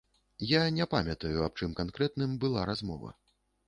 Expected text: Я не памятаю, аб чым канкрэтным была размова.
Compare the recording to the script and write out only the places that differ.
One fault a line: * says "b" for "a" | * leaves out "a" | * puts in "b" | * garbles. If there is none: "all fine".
all fine